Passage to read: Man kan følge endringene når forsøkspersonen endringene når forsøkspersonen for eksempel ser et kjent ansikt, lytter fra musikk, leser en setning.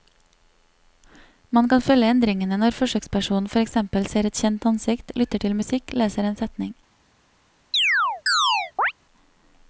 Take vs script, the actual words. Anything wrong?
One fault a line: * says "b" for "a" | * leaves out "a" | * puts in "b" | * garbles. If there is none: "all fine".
* leaves out "endringene når forsøkspersonen"
* says "til" for "fra"